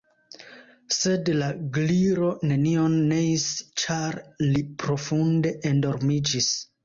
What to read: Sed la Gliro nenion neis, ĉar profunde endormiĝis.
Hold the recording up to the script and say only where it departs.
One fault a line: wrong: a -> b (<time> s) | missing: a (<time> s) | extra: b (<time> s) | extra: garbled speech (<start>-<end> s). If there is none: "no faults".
extra: li (4.5 s)